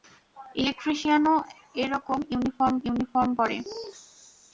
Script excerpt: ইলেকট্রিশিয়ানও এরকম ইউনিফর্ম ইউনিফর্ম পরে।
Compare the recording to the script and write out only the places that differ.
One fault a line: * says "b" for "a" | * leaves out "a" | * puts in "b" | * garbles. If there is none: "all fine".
all fine